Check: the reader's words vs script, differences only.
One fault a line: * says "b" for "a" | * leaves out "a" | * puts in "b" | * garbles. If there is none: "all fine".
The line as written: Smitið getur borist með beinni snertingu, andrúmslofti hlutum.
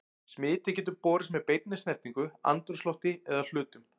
* puts in "eða"